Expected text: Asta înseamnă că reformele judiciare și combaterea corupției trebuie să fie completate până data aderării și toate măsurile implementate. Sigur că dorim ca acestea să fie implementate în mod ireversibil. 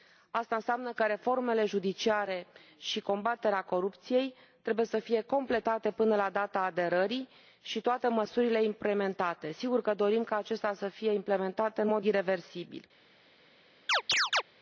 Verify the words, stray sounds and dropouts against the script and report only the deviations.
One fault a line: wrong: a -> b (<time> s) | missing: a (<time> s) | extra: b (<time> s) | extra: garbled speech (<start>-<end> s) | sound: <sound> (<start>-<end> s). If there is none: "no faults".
extra: la (6.2 s)
sound: chirp (13.9-14.4 s)